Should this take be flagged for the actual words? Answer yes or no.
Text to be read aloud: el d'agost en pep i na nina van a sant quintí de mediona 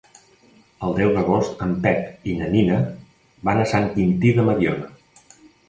yes